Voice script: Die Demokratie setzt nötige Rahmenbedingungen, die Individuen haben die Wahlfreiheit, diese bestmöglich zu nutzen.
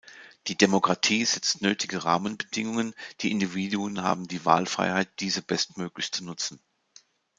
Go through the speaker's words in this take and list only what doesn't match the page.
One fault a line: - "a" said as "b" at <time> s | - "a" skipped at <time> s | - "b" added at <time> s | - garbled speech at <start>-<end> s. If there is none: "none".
none